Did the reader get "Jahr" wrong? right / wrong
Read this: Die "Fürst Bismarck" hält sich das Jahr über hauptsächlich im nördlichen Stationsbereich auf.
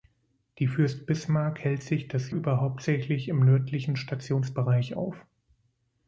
wrong